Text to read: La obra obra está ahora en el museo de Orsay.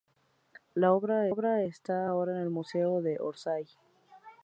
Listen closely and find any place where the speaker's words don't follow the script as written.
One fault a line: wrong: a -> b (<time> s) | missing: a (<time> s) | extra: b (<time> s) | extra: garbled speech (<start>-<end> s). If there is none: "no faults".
no faults